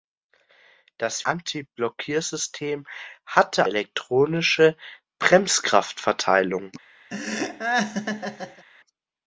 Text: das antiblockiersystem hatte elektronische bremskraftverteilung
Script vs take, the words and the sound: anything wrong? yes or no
yes